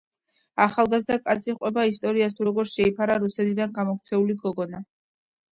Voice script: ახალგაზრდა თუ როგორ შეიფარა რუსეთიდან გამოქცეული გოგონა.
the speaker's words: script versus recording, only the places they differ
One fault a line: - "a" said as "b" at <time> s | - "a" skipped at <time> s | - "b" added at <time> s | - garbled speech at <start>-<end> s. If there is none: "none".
- "კაცი ჰყვება ისტორიას" added at 1.3 s